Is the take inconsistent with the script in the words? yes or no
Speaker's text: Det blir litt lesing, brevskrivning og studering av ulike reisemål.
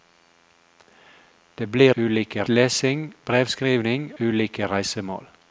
yes